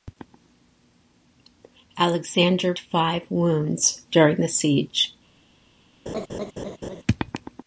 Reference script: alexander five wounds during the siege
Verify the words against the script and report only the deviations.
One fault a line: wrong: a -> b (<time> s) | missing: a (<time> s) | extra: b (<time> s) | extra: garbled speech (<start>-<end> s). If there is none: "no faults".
no faults